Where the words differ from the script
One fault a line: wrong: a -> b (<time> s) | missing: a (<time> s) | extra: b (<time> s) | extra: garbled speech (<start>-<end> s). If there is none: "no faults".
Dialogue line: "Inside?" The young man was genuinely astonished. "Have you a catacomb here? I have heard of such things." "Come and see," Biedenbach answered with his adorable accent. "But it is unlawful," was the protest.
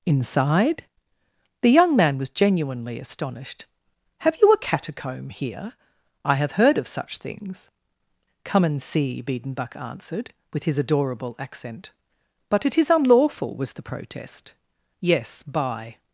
extra: Yes by (15.0 s)